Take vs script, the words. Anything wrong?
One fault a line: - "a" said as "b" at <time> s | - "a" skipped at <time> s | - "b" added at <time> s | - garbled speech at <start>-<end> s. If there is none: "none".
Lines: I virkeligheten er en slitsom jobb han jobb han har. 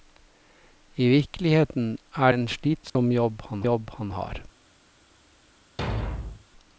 none